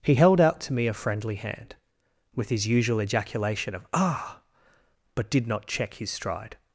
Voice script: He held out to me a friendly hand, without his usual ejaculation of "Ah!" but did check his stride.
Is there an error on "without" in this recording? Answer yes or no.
yes